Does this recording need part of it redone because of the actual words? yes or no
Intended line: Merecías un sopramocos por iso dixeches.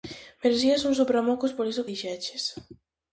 no